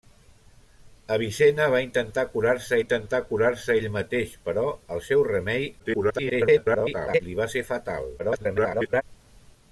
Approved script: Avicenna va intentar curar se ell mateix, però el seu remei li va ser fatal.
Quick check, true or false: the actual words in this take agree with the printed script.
false